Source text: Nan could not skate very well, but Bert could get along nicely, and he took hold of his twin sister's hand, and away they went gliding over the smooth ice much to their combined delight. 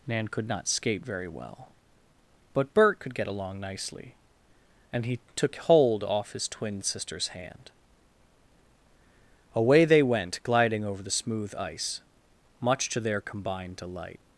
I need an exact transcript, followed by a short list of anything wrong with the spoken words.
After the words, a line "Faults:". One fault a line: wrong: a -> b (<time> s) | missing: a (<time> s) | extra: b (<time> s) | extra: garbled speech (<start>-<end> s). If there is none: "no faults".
Nan could not skate very well, but Bert could get along nicely, and he took hold off his twin sister's hand, away they went gliding over the smooth ice much to their combined delight.
Faults:
wrong: of -> off (6.0 s)
missing: and (7.7 s)